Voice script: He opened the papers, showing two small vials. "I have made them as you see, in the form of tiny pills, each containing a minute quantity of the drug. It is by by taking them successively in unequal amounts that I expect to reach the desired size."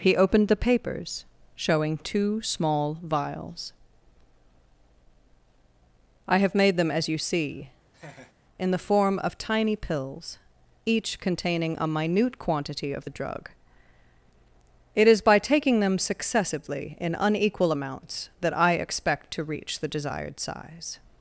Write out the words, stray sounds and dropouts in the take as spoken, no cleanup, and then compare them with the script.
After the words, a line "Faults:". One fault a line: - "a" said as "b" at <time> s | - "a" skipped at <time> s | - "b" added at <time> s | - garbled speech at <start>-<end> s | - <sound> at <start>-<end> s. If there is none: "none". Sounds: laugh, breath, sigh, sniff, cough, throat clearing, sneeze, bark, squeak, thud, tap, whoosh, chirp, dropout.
He opened the papers, showing two small vials. "I have made them as you see, in the form of tiny pills, each containing a minute quantity of the drug. It is by taking them successively in unequal amounts that I expect to reach the desired size."
Faults:
- laugh at 7.9-8.3 s
- "by" skipped at 15.4 s